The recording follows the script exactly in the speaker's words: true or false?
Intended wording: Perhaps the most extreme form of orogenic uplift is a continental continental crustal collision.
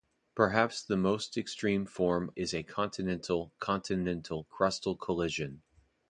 false